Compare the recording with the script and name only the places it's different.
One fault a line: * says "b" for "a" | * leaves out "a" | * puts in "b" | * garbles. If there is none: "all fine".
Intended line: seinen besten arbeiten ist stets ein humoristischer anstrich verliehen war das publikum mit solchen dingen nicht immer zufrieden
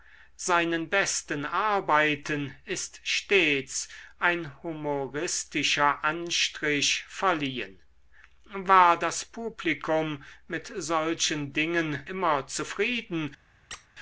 * leaves out "nicht"